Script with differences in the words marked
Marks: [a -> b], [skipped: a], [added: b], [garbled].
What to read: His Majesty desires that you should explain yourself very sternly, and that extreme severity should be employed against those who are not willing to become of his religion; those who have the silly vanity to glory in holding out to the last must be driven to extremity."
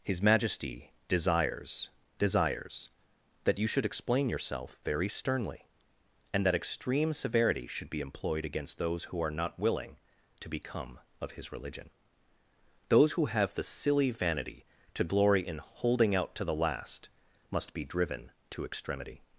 His Majesty desires [added: desires] that you should explain yourself very sternly, and that extreme severity should be employed against those who are not willing to become of his religion; those who have the silly vanity to glory in holding out to the last must be driven to extremity."